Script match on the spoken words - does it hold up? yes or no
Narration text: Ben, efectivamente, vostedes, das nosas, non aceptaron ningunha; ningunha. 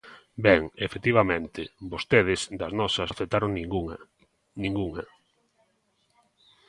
no